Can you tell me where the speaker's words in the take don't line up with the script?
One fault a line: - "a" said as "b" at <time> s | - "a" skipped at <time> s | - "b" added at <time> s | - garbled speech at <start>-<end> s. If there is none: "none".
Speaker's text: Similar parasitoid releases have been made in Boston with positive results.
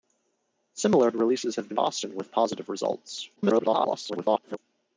- "parasitoid" skipped at 1.1 s
- "made in" skipped at 1.8 s
- garbled speech at 3.4-4.6 s